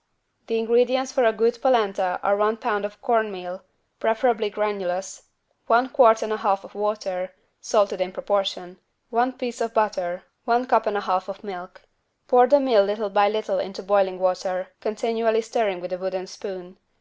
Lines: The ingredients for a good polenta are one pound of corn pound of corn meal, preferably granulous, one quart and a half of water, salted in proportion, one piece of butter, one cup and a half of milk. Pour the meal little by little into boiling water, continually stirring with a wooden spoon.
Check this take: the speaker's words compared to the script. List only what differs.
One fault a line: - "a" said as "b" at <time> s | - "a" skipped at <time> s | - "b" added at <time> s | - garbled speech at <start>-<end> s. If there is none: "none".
- "pound of corn" skipped at 3.3 s